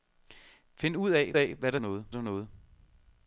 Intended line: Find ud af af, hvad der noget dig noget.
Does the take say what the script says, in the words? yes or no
yes